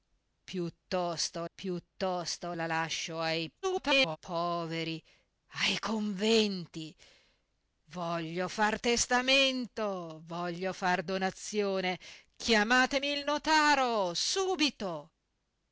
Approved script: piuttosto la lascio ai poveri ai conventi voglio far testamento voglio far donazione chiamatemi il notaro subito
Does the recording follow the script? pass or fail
fail